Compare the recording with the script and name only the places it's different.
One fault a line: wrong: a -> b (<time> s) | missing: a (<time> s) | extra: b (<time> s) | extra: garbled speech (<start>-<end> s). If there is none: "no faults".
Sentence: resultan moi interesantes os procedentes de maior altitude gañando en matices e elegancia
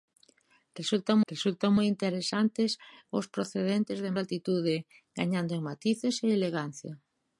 extra: resultan (1.3 s)
missing: maior (4.1 s)